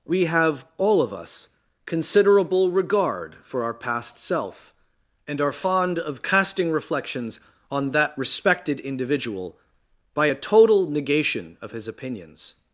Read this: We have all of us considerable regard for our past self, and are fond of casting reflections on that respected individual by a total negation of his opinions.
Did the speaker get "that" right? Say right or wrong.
right